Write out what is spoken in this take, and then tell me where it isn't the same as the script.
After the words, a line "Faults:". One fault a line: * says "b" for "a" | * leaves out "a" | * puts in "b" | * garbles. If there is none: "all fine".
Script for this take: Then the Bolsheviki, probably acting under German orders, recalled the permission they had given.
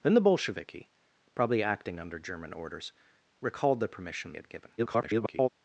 Then the Bolsheviki, probably acting under German orders, recalled the permission had given. [garbled]
Faults:
* leaves out "they"
* garbles